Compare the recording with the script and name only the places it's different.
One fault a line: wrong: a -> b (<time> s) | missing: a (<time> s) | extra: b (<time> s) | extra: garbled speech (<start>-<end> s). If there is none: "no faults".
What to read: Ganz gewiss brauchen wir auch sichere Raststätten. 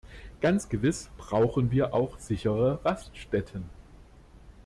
no faults